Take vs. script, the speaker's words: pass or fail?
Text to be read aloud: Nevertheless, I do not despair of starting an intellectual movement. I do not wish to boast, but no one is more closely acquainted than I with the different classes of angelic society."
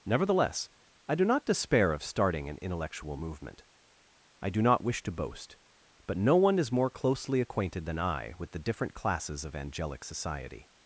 pass